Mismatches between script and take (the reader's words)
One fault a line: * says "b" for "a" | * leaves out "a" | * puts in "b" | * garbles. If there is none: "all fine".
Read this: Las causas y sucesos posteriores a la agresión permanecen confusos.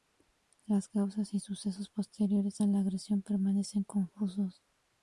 all fine